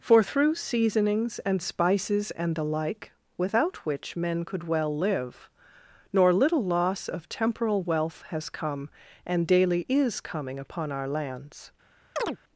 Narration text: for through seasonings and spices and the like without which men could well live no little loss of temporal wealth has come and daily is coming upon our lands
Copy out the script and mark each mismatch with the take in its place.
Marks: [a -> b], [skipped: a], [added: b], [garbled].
for through seasonings and spices and the like without which men could well live [no -> nor] little loss of temporal wealth has come and daily is coming upon our lands